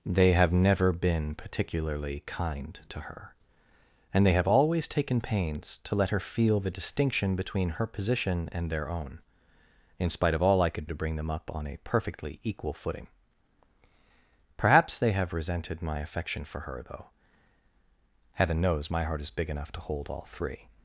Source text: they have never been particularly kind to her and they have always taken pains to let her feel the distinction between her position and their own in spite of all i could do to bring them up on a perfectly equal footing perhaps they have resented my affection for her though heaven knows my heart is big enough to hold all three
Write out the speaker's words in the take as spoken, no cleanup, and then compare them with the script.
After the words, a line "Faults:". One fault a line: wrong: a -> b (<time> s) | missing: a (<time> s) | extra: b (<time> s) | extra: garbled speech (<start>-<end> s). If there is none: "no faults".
they have never been particularly kind to her and they have always taken pains to let her feel the distinction between her position and their own in spite of all i could to bring them up on a perfectly equal footing perhaps they have resented my affection for her though heaven knows my heart is big enough to hold all three
Faults:
missing: do (10.9 s)